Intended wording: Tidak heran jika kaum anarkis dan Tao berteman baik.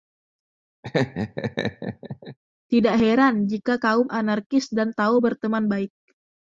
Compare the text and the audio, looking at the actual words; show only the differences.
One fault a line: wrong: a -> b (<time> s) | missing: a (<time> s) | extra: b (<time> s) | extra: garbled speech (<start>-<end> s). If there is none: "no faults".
no faults